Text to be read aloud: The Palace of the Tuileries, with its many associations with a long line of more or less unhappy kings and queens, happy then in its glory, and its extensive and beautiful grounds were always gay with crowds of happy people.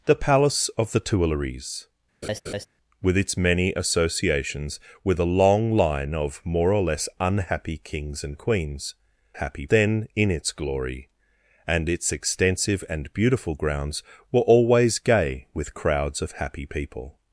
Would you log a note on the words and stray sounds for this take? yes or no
yes